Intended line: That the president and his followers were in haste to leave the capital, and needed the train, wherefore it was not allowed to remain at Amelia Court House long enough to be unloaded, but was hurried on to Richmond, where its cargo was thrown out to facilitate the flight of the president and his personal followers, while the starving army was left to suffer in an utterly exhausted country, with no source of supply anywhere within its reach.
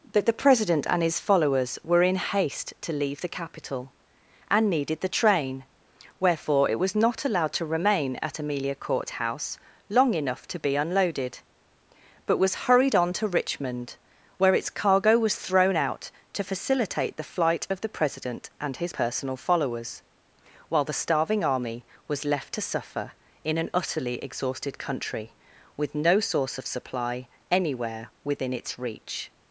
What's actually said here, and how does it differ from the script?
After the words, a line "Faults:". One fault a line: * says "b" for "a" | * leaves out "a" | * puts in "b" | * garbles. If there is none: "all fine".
That the president and his followers were in haste to leave the capital, and needed the train, wherefore it was not allowed to remain at Amelia Court House long enough to be unloaded, but was hurried on to Richmond, where its cargo was thrown out to facilitate the flight of the president and his personal followers, while the starving army was left to suffer in an utterly exhausted country, with no source of supply anywhere within its reach.
Faults:
all fine